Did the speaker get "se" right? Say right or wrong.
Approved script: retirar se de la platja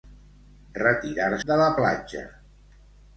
wrong